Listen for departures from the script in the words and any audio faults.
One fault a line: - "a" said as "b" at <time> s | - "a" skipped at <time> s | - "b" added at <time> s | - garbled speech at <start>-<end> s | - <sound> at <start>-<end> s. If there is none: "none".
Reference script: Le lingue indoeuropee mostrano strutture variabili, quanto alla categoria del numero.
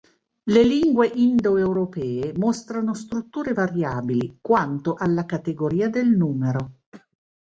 - throat clearing at 6.9-7.2 s